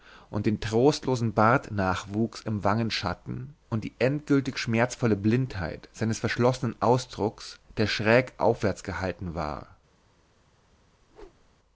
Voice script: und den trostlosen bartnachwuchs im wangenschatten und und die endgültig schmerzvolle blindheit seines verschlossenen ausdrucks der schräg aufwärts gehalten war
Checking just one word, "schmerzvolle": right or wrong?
right